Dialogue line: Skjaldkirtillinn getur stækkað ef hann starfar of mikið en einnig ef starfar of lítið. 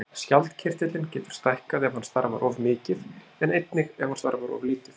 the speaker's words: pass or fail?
fail